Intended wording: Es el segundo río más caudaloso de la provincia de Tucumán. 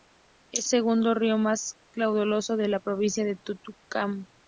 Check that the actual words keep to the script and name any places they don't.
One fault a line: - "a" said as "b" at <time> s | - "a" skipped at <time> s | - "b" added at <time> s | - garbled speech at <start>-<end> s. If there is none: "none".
- "el" skipped at 0.7 s